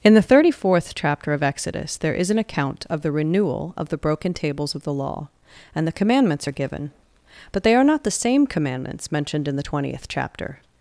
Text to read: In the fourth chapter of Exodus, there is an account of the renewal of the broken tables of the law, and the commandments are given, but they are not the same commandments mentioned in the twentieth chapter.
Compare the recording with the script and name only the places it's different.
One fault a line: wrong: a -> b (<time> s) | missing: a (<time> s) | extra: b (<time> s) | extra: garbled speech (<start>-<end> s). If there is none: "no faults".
extra: thirty (0.2 s)